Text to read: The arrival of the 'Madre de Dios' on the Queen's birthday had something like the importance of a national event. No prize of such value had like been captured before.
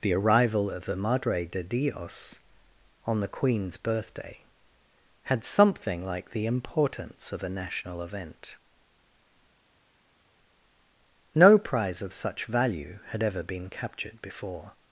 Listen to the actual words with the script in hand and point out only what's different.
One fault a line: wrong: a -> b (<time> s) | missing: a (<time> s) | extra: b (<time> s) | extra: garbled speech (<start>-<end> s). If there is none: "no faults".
wrong: like -> ever (13.2 s)